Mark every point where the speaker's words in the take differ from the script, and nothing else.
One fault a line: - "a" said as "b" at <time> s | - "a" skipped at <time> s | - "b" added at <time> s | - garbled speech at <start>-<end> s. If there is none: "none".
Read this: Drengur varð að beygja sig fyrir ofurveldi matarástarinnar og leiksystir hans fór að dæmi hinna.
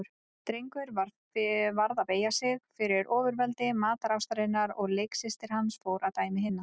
none